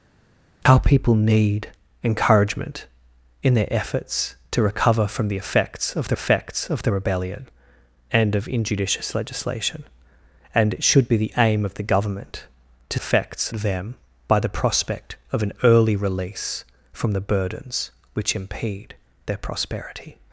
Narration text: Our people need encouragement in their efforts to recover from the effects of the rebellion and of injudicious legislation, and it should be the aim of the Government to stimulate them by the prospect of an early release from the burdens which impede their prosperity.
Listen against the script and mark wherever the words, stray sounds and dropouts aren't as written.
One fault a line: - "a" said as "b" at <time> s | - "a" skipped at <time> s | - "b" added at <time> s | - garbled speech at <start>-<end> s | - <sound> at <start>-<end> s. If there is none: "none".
- "effects of the" added at 6.1 s
- "stimulate" said as "effects" at 12.9 s